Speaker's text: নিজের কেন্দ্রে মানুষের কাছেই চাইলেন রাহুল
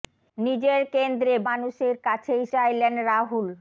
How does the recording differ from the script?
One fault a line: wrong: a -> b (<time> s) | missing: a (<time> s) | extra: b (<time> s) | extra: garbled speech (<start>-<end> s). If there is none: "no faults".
no faults